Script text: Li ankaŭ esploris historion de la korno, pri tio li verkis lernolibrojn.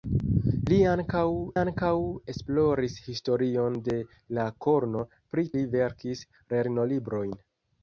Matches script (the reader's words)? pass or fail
fail